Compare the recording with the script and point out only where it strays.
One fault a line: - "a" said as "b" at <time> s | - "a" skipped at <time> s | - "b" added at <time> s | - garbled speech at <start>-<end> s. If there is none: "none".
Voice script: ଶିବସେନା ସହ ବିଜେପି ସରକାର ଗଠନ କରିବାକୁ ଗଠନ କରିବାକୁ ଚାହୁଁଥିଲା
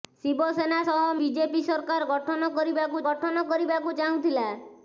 none